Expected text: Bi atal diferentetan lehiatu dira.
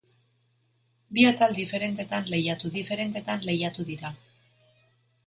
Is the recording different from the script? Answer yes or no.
yes